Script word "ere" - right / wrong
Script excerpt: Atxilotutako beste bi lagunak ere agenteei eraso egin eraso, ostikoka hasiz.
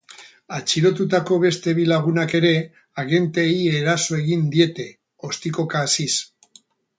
right